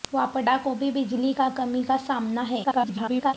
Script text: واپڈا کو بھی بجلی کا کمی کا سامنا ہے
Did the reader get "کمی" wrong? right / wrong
right